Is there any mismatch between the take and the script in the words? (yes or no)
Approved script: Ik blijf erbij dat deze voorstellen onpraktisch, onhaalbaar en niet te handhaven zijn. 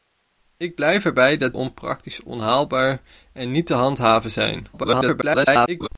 yes